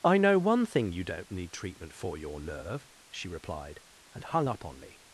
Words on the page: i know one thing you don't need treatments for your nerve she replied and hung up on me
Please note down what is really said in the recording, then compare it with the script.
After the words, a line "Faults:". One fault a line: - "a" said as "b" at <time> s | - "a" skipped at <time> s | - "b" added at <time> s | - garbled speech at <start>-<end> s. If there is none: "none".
i know one thing you don't need treatment for your nerve she replied and hung up on me
Faults:
- "treatments" said as "treatment" at 1.5 s